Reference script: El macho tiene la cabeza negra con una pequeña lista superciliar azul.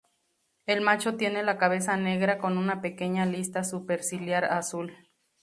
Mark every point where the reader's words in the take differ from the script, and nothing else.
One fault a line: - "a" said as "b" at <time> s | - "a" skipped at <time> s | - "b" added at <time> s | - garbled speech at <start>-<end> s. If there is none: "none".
none